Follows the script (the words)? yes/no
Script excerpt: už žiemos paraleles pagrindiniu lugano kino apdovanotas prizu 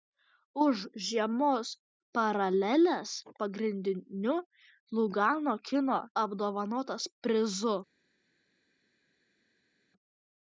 yes